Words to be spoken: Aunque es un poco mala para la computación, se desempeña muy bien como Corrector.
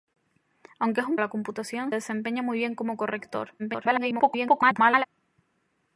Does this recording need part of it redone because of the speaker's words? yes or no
yes